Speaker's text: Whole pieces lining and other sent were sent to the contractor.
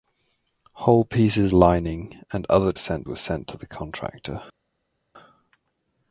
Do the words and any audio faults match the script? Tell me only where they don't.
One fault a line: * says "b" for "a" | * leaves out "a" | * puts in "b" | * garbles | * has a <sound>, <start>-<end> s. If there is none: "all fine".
all fine